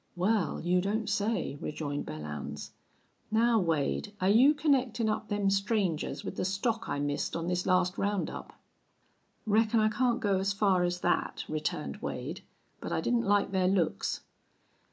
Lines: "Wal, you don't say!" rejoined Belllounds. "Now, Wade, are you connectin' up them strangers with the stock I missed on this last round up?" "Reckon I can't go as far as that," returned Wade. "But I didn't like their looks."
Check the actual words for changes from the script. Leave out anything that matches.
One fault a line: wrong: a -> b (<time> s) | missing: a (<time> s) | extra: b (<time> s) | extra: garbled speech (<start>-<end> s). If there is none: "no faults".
no faults